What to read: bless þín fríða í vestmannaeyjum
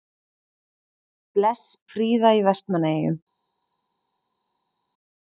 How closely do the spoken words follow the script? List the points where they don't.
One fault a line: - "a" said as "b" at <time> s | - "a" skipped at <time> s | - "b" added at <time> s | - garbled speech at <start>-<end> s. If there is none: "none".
- "þín" skipped at 1.6 s